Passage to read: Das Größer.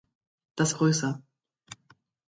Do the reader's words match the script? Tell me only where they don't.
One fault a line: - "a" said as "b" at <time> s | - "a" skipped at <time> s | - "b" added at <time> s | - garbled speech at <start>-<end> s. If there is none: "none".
none